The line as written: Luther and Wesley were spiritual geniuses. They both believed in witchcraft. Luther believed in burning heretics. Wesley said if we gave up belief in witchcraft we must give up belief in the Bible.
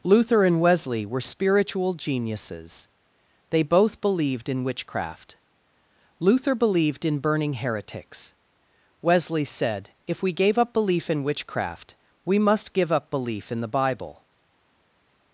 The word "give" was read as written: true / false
true